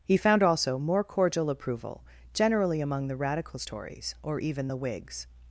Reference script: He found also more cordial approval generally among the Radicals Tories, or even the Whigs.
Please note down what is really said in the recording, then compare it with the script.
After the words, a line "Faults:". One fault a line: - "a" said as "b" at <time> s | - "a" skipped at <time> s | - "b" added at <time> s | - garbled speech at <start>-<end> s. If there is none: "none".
He found also more cordial approval generally among the Radicals Tories, or even the Whigs.
Faults:
none